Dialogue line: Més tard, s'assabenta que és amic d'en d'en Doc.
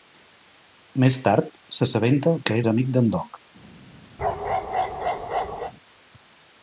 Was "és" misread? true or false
false